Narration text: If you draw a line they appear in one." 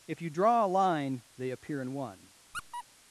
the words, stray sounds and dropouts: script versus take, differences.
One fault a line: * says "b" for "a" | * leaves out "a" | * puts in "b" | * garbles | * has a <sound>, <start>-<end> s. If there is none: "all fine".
* has a squeak, 2.5-2.8 s